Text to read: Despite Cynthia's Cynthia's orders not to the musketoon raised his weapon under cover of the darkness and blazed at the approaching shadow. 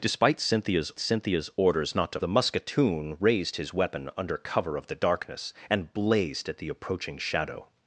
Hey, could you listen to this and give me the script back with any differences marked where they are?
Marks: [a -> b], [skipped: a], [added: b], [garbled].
Despite Cynthia's Cynthia's orders not to the musketoon raised his weapon under cover of the darkness and blazed at the approaching shadow.